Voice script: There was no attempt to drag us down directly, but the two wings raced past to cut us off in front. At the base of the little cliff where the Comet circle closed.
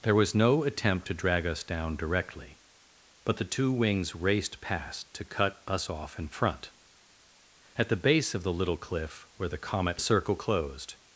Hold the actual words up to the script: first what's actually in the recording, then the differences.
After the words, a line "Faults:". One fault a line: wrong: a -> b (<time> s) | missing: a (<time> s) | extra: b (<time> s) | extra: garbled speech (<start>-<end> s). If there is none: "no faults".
There was no attempt to drag us down directly, but the two wings raced past to cut us off in front. At the base of the little cliff where the Comet circle closed.
Faults:
no faults